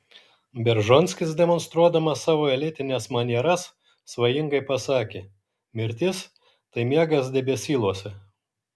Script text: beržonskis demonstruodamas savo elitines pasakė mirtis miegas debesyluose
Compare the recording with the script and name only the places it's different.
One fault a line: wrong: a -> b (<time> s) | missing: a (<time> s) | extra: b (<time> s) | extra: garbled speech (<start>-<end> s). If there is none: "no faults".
extra: manieras svajingai (3.2 s)
extra: tai (6.5 s)